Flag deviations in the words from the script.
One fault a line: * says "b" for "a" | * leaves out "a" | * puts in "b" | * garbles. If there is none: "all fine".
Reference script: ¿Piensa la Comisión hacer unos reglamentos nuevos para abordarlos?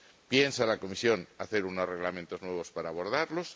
all fine